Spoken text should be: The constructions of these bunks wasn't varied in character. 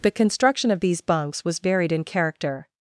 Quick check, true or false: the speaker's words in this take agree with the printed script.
false